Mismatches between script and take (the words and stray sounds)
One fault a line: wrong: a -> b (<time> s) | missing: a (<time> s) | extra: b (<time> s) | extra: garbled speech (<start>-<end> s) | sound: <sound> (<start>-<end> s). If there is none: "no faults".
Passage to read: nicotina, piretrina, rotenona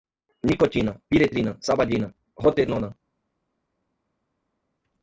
extra: sabadina (1.6 s)